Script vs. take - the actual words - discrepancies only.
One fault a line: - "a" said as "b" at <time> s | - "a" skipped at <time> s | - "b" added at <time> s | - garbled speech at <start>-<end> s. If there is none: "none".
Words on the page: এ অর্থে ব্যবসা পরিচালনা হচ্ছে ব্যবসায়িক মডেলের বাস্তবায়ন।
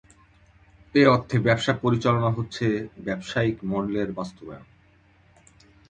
none